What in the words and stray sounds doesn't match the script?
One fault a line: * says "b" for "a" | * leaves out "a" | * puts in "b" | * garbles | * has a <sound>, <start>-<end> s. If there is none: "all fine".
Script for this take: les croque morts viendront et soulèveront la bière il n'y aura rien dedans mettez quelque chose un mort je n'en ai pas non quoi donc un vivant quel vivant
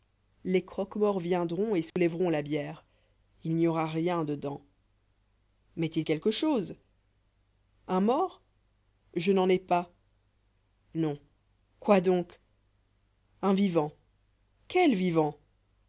* has a dropout, 1.9-2.0 s